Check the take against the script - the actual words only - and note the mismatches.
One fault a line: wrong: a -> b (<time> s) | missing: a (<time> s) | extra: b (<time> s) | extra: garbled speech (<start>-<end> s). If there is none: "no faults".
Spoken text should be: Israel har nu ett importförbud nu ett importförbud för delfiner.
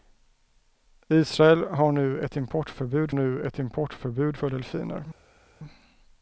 no faults